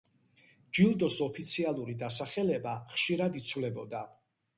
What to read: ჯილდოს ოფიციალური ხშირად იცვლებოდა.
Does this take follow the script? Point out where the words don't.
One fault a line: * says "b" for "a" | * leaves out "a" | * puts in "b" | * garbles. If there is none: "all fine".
* puts in "დასახელება"